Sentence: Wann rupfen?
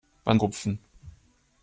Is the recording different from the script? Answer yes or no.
no